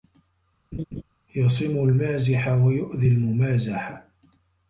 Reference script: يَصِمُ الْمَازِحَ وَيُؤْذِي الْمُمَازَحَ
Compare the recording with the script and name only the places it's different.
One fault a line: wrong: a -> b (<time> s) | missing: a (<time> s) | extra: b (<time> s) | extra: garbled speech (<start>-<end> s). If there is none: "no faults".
no faults